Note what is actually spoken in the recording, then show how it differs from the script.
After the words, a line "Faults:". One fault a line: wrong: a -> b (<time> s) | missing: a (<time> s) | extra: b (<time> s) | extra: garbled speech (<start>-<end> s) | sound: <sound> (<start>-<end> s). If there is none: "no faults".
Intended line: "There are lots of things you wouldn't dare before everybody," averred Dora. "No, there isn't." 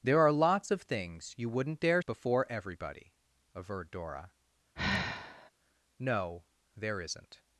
"There are lots of things you wouldn't dare before everybody," averred Dora. "No, there isn't."
Faults:
sound: sigh (4.8-5.5 s)